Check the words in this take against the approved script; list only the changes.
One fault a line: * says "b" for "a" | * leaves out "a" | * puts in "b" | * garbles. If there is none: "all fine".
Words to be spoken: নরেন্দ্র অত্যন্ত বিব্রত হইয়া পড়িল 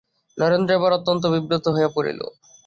* puts in "এবার"